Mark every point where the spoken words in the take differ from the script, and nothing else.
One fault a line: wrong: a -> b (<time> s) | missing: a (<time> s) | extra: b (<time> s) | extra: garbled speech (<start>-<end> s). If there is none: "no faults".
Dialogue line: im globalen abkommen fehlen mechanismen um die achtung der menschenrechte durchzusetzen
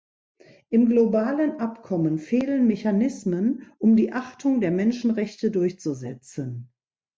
no faults